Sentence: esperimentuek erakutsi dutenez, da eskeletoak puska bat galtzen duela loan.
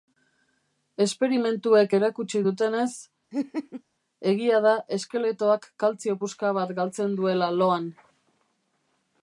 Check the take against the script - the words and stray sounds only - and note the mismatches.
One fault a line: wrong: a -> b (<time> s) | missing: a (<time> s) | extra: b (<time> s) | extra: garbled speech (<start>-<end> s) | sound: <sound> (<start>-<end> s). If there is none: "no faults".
sound: laugh (3.3-3.8 s)
extra: egia (4.3 s)
extra: kaltzio (5.8 s)